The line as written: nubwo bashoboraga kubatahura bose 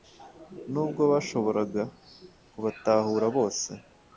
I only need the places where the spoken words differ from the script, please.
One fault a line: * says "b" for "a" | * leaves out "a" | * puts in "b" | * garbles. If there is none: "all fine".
all fine